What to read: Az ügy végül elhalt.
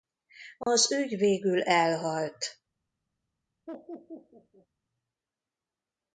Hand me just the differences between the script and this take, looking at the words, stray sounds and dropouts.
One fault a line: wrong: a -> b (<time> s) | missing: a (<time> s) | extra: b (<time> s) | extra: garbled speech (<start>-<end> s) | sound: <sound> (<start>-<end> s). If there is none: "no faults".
sound: dropout (0.6-0.7 s)
sound: laugh (3.7-4.7 s)